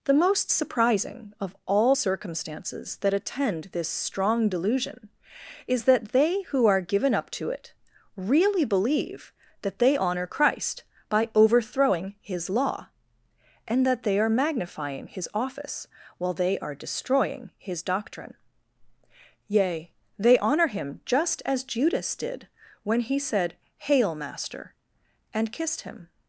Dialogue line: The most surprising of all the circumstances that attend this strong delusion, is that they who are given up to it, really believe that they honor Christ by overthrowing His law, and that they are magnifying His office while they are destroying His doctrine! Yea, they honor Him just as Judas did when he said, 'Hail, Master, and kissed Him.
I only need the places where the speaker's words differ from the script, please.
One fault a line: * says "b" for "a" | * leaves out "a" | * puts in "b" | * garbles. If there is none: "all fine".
* leaves out "the"